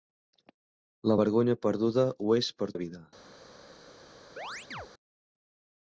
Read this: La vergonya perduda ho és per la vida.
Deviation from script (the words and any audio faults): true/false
true